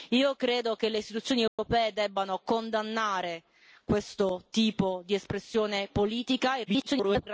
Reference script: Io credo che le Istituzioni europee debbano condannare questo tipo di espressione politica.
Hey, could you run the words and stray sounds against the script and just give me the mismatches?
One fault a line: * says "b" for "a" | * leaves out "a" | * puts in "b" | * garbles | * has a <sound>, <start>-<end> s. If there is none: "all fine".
* has a dropout, 1.5-1.6 s
* garbles